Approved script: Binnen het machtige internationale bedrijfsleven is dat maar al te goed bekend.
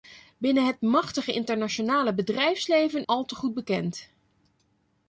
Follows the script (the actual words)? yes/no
no